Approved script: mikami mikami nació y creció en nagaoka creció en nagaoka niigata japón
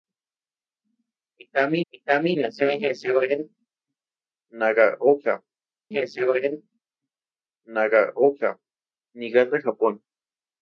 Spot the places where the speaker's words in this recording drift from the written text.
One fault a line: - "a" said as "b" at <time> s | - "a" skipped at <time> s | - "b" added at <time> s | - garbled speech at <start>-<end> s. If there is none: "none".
none